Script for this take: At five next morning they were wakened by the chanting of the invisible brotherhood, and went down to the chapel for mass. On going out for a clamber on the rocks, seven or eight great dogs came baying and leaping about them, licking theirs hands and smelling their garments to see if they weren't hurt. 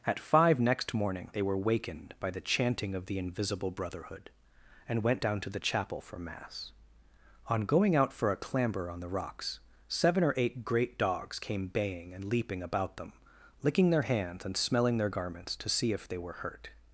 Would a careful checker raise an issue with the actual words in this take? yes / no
yes